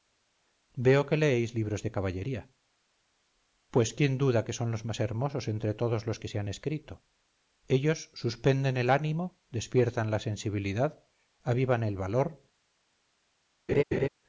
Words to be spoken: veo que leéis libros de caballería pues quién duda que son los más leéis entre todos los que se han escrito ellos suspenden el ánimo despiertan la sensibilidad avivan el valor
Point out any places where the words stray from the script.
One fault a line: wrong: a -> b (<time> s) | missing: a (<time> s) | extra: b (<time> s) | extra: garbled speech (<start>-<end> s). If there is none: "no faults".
wrong: leéis -> hermosos (5.0 s)